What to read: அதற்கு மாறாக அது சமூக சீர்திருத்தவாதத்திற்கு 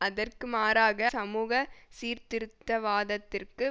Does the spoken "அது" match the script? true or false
false